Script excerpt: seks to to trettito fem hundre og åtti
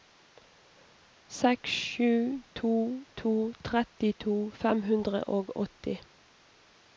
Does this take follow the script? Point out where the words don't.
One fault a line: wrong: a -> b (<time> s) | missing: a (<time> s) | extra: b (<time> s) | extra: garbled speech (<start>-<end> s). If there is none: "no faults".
extra: sju (1.8 s)